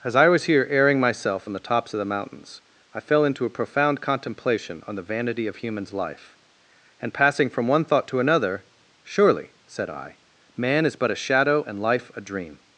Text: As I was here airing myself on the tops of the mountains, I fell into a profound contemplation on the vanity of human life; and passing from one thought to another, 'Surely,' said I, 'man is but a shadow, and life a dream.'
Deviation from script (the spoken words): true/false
true